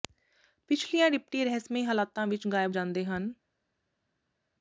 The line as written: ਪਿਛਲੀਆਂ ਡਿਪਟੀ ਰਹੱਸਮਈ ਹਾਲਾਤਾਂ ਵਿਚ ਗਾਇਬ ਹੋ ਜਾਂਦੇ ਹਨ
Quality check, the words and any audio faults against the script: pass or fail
fail